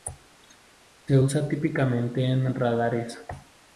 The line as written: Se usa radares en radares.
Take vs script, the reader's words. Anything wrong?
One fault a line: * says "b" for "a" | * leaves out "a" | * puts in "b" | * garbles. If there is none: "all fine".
* says "típicamente" for "radares"